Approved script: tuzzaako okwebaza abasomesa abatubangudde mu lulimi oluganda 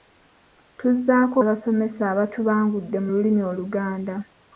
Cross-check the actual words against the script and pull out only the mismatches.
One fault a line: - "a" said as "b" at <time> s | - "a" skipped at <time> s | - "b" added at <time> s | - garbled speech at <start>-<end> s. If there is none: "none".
- "okwebaza" skipped at 1.4 s